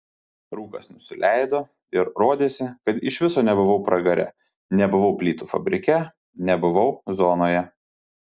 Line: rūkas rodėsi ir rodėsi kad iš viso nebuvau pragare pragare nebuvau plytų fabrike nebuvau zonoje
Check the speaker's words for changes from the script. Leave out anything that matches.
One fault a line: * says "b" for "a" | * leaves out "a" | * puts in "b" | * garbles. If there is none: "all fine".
* says "nusileido" for "rodėsi"
* leaves out "pragare"